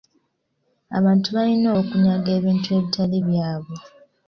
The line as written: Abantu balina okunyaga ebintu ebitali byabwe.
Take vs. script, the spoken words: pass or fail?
pass